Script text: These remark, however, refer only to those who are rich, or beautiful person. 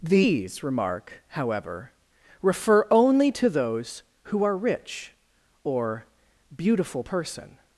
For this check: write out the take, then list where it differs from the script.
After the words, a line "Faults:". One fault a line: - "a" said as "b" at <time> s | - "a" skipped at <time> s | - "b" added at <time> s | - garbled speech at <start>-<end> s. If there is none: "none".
These remark, however, refer only to those who are rich, or beautiful person.
Faults:
none